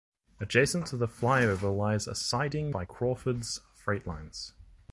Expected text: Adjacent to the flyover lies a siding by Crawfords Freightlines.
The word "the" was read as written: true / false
true